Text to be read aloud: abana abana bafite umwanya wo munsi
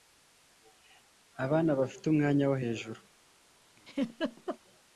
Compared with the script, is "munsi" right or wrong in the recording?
wrong